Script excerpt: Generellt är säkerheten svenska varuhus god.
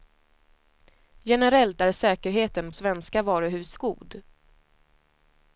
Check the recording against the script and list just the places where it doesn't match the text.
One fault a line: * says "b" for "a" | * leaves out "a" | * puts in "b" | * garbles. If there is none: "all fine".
all fine